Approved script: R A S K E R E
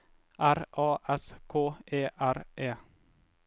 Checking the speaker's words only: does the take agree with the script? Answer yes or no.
yes